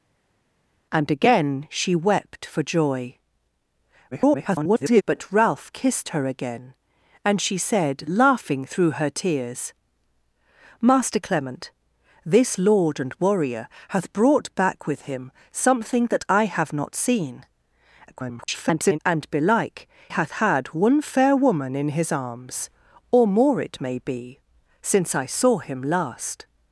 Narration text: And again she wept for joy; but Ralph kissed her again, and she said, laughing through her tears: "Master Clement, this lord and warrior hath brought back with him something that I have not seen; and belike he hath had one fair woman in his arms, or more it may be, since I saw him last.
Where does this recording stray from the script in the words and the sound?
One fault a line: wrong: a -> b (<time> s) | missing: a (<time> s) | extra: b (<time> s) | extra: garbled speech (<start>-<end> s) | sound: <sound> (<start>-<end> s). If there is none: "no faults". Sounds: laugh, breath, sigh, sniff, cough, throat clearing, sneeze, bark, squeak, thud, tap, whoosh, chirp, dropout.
extra: garbled speech (4.1-5.0 s)
extra: garbled speech (18.1-19.0 s)
missing: he (19.9 s)